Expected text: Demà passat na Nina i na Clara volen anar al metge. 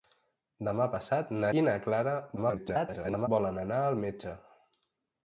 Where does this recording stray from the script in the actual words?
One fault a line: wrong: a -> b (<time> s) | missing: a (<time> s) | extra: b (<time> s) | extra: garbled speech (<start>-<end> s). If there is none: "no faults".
missing: Nina (1.5 s)
extra: garbled speech (2.4-3.3 s)